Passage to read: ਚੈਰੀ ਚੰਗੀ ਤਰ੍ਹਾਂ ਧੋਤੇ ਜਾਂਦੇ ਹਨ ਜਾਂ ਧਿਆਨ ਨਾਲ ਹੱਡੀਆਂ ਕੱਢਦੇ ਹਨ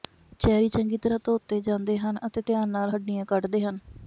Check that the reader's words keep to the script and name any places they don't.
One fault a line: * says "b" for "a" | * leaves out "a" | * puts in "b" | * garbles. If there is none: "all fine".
* says "ਅਤੇ" for "ਜਾਂ"